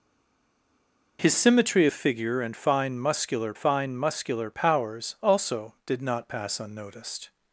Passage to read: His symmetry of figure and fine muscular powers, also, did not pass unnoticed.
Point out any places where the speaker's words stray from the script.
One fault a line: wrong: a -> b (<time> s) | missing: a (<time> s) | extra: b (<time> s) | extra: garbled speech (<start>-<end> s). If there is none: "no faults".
extra: fine muscular (3.5 s)